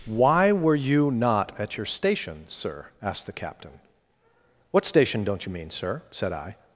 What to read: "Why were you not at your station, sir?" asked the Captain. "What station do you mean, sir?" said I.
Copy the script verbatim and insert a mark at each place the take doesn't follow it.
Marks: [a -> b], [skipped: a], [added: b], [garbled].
"Why were you not at your station, sir?" asked the Captain. "What station [do -> don't] you mean, sir?" said I.